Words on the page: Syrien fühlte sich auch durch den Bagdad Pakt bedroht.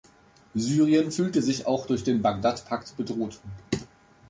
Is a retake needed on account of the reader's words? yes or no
no